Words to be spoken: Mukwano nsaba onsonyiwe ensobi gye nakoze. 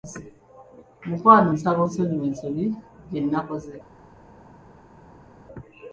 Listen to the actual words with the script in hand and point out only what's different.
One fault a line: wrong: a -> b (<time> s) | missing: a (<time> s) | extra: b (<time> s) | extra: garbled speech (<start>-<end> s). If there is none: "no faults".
no faults